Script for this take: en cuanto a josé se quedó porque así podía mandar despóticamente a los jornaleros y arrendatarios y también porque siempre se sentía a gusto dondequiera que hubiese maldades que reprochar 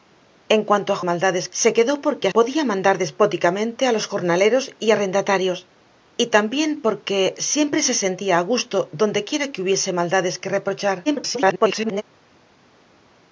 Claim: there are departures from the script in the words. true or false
true